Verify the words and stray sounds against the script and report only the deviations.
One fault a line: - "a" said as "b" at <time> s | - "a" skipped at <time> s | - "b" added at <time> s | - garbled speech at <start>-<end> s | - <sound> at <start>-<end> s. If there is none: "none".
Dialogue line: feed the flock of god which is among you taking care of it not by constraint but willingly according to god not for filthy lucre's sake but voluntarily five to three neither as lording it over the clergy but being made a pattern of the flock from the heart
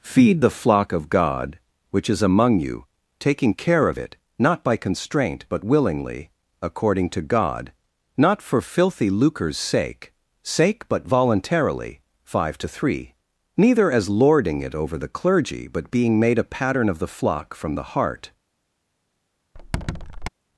- "sake" added at 10.4 s
- squeak at 19.5-20.3 s